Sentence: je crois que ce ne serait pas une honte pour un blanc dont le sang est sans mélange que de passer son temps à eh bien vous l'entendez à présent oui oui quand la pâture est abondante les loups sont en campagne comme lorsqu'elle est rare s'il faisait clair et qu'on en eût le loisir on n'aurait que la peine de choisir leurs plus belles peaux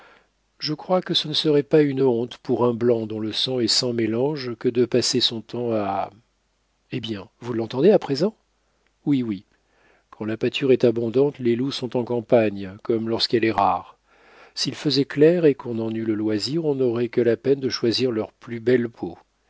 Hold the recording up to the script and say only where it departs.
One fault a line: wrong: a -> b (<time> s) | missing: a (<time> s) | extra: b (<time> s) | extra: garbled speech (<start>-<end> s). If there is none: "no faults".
no faults